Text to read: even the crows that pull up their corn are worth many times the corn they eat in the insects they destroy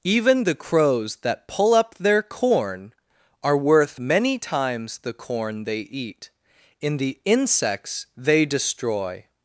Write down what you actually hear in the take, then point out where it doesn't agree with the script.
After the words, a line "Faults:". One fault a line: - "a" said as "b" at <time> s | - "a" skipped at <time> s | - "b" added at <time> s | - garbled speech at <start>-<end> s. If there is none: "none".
even the crows that pull up their corn are worth many times the corn they eat in the insects they destroy
Faults:
none